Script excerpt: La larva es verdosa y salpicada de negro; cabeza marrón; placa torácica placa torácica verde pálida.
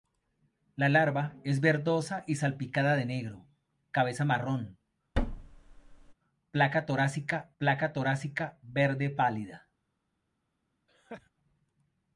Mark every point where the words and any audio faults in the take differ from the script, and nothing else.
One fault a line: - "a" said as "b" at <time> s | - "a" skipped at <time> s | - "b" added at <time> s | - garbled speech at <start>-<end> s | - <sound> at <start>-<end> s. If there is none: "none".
- thud at 5.1-6.1 s
- laugh at 10.9-11.3 s